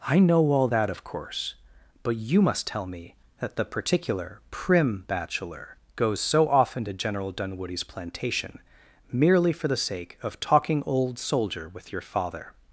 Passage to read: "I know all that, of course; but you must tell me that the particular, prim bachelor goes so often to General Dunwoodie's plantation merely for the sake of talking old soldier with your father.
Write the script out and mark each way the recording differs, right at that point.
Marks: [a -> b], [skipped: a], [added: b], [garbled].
"I know all that, of course; but you must tell me that the particular, prim bachelor goes so often to General Dunwoodie's plantation merely for the sake of talking old soldier with your father.